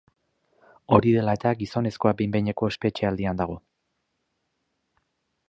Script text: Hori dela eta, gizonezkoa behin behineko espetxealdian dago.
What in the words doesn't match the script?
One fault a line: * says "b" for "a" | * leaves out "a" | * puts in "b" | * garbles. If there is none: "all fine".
all fine